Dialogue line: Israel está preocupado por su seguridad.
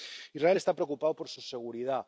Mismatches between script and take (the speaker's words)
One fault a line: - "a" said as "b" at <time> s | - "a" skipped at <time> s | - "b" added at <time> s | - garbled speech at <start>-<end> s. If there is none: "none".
none